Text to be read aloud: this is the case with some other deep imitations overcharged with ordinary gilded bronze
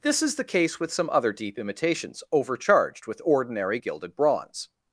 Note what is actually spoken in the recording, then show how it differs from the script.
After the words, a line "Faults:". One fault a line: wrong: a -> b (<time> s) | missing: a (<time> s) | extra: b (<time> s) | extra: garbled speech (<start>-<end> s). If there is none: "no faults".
this is the case with some other deep imitations overcharged with ordinary gilded bronze
Faults:
no faults